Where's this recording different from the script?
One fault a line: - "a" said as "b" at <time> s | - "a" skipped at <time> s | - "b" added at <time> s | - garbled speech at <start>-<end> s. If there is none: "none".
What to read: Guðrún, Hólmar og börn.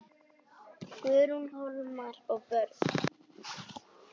none